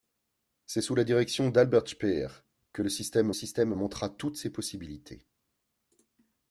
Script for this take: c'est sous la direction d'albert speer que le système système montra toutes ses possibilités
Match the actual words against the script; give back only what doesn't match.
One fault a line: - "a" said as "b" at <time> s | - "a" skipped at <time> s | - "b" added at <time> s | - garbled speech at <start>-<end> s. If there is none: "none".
none